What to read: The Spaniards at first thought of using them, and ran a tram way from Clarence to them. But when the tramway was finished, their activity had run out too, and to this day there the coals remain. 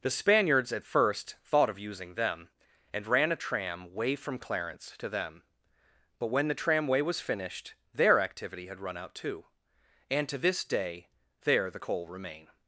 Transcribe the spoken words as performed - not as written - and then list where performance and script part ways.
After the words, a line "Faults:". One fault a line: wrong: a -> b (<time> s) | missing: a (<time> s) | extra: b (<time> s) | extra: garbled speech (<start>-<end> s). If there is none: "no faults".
The Spaniards at first thought of using them, and ran a tram way from Clarence to them. But when the tramway was finished, their activity had run out too, and to this day there the coal remain.
Faults:
wrong: coals -> coal (11.8 s)